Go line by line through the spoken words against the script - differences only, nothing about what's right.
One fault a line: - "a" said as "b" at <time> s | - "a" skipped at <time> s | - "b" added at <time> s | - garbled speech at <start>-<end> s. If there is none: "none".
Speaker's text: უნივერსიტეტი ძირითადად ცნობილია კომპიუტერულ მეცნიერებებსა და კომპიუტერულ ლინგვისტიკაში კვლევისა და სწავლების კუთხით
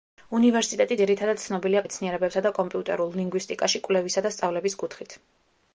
- "კომპიუტერულ" skipped at 1.8 s